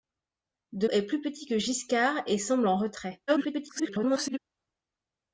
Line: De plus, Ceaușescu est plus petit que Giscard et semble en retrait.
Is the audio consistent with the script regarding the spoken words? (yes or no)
no